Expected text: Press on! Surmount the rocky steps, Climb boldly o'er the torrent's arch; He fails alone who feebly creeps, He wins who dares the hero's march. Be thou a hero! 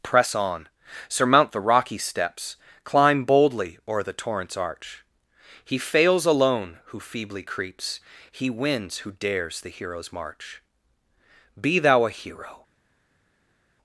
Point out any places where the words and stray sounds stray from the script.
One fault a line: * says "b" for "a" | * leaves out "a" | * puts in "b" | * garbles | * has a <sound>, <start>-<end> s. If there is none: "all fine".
all fine